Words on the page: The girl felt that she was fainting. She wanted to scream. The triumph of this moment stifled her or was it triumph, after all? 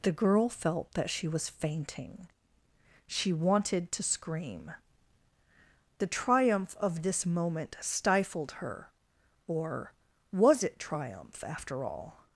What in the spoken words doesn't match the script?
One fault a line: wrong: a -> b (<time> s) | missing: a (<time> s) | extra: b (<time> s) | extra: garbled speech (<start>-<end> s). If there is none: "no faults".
no faults